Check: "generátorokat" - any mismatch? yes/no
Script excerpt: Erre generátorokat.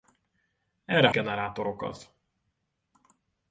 no